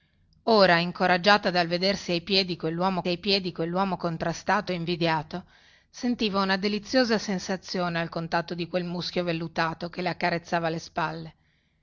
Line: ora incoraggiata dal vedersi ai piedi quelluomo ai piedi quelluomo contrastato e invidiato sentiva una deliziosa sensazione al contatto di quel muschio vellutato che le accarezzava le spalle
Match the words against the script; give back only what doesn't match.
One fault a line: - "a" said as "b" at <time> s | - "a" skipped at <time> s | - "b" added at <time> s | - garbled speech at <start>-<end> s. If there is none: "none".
none